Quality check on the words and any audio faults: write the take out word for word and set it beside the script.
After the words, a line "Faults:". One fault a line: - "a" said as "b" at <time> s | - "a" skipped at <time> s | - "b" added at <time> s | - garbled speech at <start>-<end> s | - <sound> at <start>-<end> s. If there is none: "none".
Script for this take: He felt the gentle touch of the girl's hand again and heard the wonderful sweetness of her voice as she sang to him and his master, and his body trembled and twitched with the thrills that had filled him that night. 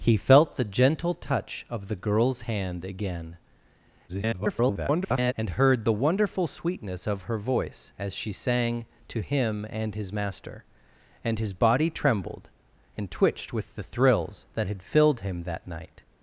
He felt the gentle touch of the girl's hand again [garbled] and heard the wonderful sweetness of her voice as she sang to him and his master, and his body trembled and twitched with the thrills that had filled him that night.
Faults:
- garbled speech at 4.1-5.3 s